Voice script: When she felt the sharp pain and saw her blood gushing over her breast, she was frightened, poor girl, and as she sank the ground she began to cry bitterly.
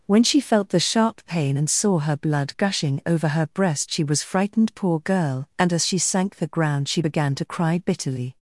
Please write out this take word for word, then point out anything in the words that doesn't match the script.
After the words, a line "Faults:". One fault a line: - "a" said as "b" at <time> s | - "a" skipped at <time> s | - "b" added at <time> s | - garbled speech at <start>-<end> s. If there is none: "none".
When she felt the sharp pain and saw her blood gushing over her breast, she was frightened, poor girl, and as she sank the ground she began to cry bitterly.
Faults:
none